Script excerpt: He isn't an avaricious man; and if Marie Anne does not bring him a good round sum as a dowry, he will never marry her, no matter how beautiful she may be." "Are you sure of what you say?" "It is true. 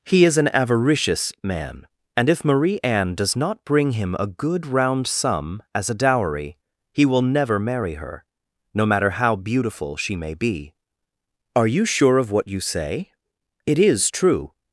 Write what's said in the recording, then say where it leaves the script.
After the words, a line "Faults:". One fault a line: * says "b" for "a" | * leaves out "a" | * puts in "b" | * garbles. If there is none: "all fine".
He is an avaricious man; and if Marie Anne does not bring him a good round sum as a dowry, he will never marry her, no matter how beautiful she may be." "Are you sure of what you say?" "It is true.
Faults:
* says "is" for "isn't"